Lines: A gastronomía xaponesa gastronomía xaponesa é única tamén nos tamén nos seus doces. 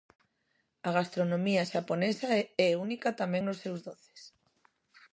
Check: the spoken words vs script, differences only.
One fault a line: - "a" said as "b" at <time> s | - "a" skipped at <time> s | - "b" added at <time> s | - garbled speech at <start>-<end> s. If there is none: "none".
- "gastronomía xaponesa" skipped at 2.3 s
- "tamén nos" skipped at 3.6 s